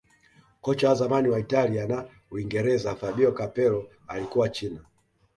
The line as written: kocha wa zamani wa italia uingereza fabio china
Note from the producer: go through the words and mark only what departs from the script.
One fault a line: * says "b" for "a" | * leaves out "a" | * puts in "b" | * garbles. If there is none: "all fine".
* puts in "na"
* puts in "capello alikuwa"